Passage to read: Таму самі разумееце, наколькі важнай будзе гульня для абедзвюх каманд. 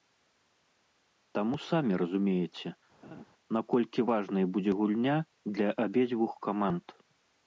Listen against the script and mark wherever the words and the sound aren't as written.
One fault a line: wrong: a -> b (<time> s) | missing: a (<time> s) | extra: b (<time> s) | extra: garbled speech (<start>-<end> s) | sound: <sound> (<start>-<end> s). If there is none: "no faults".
sound: laugh (3.0-3.2 s)